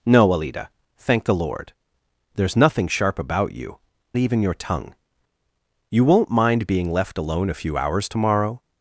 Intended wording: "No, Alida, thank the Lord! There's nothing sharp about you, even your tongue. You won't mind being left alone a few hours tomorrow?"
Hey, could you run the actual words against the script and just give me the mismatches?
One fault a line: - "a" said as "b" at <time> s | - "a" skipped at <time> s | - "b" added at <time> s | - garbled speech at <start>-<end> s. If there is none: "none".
none